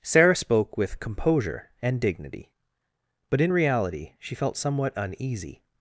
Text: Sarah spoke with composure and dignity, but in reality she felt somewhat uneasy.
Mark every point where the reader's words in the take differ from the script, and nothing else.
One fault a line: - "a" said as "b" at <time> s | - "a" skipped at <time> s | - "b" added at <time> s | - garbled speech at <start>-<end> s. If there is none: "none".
none